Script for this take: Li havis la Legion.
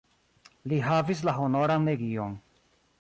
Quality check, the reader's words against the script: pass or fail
fail